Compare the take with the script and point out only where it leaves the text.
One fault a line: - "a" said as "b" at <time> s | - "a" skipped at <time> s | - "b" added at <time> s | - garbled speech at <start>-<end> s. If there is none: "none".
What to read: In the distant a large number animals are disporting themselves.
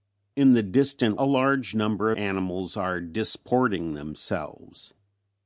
none